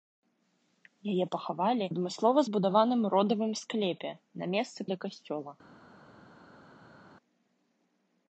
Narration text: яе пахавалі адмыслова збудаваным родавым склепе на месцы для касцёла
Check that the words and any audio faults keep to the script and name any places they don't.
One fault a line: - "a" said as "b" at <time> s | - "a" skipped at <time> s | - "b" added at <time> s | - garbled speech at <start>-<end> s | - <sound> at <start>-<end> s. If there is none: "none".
none